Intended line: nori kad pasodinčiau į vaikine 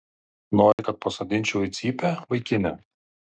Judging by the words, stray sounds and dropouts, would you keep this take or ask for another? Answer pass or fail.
fail